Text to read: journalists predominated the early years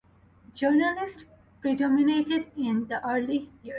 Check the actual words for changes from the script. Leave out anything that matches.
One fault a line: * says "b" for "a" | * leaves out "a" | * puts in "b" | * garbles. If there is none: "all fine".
* puts in "in"